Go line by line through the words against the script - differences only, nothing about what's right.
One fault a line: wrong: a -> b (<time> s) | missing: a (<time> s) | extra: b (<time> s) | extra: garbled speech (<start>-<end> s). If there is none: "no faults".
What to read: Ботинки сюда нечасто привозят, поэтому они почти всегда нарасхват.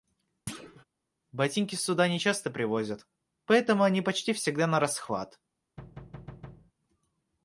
no faults